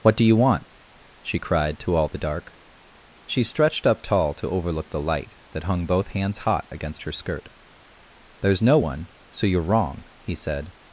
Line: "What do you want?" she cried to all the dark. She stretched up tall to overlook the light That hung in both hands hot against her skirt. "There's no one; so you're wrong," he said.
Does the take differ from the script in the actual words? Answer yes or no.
yes